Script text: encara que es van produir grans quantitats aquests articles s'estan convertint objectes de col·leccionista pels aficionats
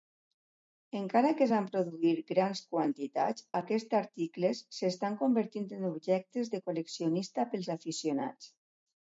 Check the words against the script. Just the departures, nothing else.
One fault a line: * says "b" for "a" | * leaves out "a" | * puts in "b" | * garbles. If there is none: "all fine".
* puts in "en"